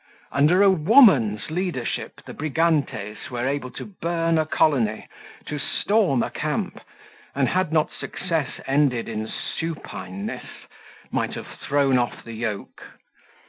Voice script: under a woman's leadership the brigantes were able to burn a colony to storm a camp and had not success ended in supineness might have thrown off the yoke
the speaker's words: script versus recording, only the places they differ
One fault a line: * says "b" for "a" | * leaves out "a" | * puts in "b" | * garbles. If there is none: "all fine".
all fine